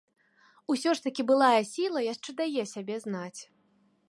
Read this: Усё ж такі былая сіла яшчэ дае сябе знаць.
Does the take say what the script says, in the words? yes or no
yes